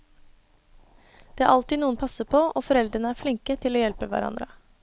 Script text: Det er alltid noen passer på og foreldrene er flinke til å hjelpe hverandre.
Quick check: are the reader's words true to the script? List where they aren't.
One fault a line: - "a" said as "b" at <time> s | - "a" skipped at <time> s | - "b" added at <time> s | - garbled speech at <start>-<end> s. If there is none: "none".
none